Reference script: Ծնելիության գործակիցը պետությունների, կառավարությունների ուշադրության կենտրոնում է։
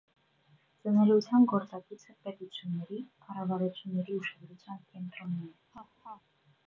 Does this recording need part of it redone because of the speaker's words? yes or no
no